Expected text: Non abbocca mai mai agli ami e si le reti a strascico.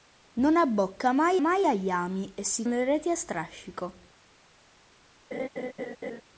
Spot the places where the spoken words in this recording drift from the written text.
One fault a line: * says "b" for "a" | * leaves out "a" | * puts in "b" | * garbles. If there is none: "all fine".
all fine